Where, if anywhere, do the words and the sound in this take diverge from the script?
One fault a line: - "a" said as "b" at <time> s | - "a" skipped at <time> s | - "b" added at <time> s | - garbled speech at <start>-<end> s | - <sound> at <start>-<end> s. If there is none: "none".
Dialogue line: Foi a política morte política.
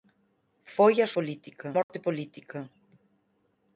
- dropout at 1.8-1.9 s